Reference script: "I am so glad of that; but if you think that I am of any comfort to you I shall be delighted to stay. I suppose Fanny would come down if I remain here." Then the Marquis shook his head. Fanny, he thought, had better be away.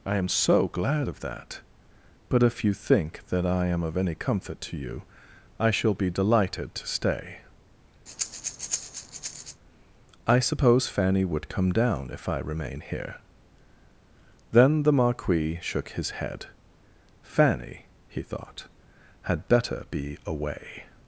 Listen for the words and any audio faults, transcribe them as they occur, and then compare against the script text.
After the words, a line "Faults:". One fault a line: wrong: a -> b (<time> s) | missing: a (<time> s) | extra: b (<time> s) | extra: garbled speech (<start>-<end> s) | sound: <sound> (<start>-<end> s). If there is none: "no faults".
"I am so glad of that; but if you think that I am of any comfort to you I shall be delighted to stay. I suppose Fanny would come down if I remain here." Then the Marquis shook his head. Fanny, he thought, had better be away.
Faults:
sound: breath (8.1-9.6 s)